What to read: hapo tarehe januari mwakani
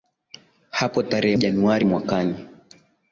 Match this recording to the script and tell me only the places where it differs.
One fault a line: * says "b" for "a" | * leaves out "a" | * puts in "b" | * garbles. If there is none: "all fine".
all fine